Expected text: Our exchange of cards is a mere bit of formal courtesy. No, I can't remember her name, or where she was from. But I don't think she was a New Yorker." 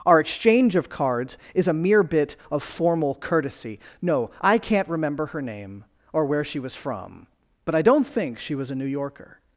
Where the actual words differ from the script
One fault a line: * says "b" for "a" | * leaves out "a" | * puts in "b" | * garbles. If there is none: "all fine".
all fine